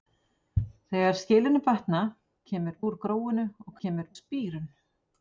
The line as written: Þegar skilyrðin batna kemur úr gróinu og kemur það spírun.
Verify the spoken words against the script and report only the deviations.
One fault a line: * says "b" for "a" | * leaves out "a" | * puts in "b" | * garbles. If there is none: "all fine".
all fine